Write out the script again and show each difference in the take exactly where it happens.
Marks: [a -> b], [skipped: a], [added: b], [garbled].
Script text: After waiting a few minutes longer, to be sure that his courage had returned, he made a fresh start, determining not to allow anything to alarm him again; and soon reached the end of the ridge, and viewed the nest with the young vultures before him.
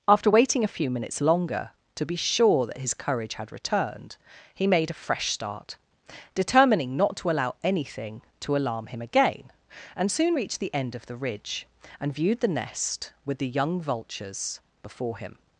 After waiting a few minutes longer, to be sure that his courage had returned, he made a fresh start, determining not to allow anything to alarm him again; and soon reached the end of the ridge, and viewed the nest with the young vultures before him.